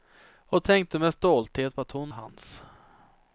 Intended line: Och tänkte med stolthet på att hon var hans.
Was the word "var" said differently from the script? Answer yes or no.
yes